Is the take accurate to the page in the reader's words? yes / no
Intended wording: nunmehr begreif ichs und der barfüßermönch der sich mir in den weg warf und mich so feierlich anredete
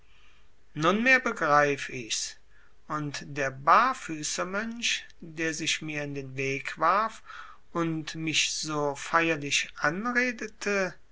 yes